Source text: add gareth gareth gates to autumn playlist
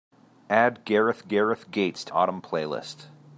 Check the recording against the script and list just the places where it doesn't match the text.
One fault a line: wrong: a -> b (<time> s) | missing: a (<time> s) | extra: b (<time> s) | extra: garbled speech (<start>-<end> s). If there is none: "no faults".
no faults